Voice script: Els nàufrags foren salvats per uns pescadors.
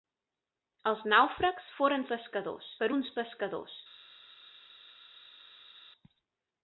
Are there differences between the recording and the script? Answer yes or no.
yes